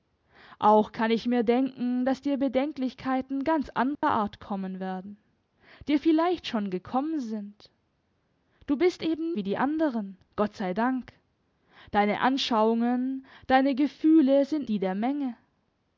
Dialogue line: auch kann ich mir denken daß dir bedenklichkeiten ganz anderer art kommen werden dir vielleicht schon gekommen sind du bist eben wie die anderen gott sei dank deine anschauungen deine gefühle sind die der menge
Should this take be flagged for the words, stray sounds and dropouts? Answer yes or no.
yes